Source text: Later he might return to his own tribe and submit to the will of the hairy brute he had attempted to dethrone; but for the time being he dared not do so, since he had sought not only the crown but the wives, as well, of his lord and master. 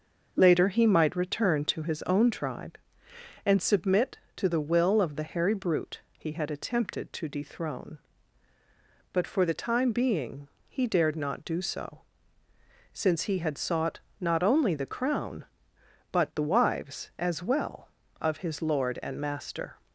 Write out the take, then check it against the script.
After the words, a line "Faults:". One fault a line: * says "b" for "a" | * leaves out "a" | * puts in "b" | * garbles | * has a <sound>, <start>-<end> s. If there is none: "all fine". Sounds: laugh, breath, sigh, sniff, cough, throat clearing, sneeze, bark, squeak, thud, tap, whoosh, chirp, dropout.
Later he might return to his own tribe and submit to the will of the hairy brute he had attempted to dethrone; but for the time being he dared not do so, since he had sought not only the crown but the wives, as well, of his lord and master.
Faults:
all fine